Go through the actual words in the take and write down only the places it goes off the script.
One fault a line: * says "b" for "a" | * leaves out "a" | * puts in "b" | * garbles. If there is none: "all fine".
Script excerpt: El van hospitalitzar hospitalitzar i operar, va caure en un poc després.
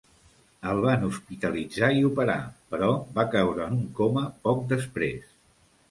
* leaves out "hospitalitzar"
* puts in "però"
* puts in "coma"